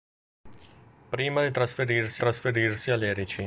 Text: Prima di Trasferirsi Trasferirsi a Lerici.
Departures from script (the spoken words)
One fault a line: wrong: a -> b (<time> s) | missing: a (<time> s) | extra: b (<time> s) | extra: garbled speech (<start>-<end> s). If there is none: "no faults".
no faults